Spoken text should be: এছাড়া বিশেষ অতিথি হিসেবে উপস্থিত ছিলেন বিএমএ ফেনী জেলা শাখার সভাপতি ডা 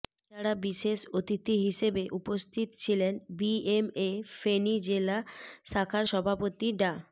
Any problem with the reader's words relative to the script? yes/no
no